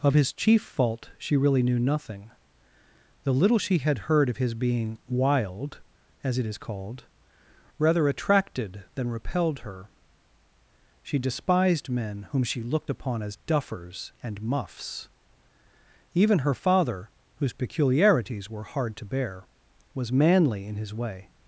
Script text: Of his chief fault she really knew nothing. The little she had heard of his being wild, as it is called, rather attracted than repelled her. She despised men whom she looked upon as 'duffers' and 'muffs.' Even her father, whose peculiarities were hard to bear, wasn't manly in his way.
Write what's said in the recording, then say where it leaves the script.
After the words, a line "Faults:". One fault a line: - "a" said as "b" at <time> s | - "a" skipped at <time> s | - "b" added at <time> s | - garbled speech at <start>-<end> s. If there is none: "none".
Of his chief fault she really knew nothing. The little she had heard of his being wild, as it is called, rather attracted than repelled her. She despised men whom she looked upon as 'duffers' and 'muffs.' Even her father, whose peculiarities were hard to bear, was manly in his way.
Faults:
- "wasn't" said as "was" at 19.9 s